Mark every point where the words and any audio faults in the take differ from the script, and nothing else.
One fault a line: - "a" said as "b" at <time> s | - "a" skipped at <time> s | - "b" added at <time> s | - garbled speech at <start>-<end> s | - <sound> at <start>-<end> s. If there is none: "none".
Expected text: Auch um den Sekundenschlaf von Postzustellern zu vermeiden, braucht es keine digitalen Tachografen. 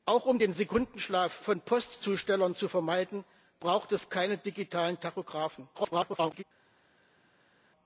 - garbled speech at 5.7-6.4 s